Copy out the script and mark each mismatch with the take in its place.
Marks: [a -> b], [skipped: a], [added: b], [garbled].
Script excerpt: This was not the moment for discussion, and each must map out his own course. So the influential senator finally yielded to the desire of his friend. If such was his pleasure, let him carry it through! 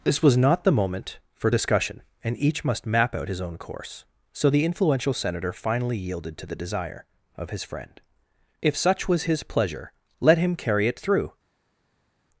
This was not the moment for discussion, and each must map out his own course. So the influential senator finally yielded to the desire of his friend. If such was his pleasure, let him carry it through!